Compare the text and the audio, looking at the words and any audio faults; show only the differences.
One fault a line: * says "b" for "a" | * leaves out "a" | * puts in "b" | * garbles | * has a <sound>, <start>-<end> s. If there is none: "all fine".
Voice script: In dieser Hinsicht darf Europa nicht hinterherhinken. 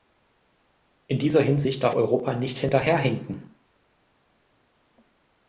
all fine